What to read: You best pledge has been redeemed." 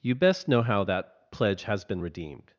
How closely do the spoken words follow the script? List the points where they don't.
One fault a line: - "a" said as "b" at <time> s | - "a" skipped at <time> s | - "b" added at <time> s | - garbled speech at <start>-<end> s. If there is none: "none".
- "know how that" added at 0.5 s